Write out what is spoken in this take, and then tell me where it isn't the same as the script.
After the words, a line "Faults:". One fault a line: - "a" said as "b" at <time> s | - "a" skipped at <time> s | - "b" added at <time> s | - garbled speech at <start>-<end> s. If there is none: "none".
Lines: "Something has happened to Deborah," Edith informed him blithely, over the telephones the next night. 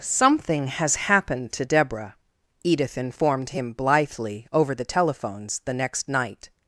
"Something has happened to Deborah," Edith informed him blithely, over the telephones the next night.
Faults:
none